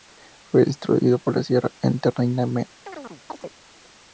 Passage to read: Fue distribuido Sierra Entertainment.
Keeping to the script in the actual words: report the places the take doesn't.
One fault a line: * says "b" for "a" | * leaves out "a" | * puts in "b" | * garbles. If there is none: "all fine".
* puts in "por"